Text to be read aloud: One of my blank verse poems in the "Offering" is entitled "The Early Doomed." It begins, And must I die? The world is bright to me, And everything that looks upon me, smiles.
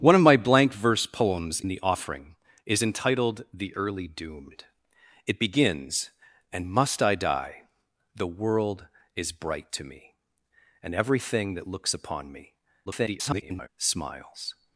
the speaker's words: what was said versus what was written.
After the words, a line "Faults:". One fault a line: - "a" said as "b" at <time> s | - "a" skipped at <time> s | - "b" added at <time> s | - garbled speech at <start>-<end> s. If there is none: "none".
One of my blank verse poems the "Offering" is entitled "The Early Doomed." It begins, And must I die? The world is bright to me, And everything that looks upon me, [garbled] smiles.
Faults:
- "in" skipped at 1.6 s
- garbled speech at 12.9-13.7 s